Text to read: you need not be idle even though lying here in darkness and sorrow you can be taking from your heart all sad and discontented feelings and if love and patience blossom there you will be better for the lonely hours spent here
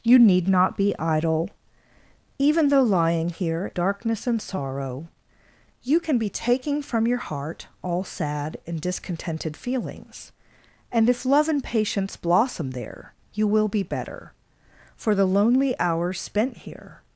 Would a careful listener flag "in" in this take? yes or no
yes